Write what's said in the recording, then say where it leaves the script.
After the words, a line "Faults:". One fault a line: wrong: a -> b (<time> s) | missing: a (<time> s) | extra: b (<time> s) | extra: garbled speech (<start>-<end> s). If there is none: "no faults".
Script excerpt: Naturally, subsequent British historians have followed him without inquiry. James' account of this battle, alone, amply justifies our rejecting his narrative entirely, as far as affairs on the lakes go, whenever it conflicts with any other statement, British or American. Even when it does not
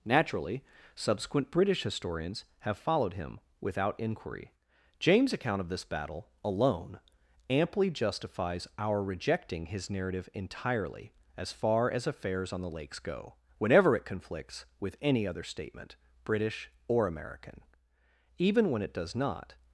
Naturally, subsequent British historians have followed him without inquiry. James' account of this battle, alone, amply justifies our rejecting his narrative entirely, as far as affairs on the lakes go, whenever it conflicts with any other statement, British or American. Even when it does not
Faults:
no faults